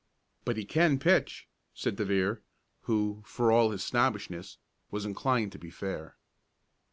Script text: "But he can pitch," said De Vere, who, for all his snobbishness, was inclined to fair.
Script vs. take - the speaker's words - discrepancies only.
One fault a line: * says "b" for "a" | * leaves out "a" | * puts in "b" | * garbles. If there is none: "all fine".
* puts in "be"